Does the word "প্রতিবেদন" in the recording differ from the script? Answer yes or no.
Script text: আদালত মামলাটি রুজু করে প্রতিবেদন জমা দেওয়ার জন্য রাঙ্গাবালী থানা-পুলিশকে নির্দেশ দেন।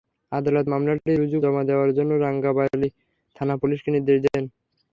yes